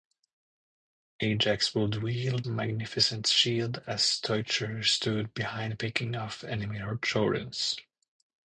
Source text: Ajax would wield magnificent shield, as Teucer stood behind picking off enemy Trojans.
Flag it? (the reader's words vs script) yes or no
no